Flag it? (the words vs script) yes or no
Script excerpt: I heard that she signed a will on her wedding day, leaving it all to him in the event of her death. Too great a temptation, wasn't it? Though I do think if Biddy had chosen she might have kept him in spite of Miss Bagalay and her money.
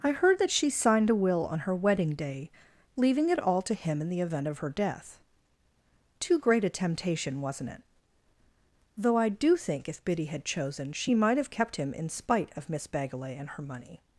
no